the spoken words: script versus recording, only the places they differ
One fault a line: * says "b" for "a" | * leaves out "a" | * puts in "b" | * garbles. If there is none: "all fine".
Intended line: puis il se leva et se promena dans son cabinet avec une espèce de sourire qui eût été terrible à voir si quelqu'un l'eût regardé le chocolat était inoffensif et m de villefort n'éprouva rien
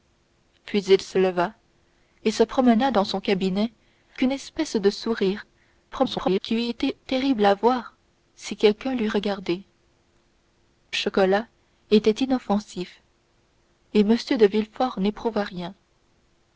* leaves out "avec"
* garbles
* leaves out "le"